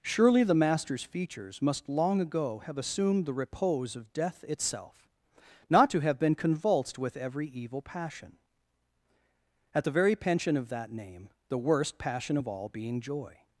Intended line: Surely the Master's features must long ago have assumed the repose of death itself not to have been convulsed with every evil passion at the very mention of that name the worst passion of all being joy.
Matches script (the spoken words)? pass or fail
fail